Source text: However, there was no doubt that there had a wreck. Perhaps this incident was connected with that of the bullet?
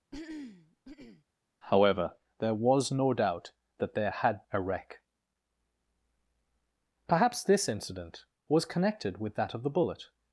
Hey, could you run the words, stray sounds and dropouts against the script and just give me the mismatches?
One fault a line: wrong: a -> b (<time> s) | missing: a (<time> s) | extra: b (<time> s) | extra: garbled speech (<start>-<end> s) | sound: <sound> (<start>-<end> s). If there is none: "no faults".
sound: throat clearing (0.1-1.2 s)